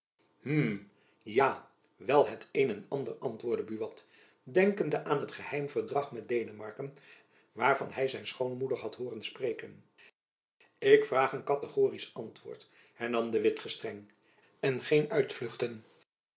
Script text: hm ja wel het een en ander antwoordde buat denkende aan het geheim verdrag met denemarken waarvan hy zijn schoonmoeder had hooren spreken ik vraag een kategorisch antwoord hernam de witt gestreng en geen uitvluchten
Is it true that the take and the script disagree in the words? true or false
false